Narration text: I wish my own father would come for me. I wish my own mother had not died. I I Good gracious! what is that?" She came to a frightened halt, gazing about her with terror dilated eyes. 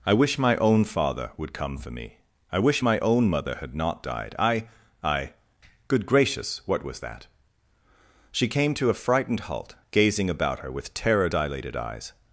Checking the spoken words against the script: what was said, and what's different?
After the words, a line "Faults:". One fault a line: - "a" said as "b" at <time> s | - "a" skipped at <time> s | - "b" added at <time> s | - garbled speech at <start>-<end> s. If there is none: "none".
I wish my own father would come for me. I wish my own mother had not died. I I Good gracious! what was that?" She came to a frightened halt, gazing about her with terror dilated eyes.
Faults:
- "is" said as "was" at 6.8 s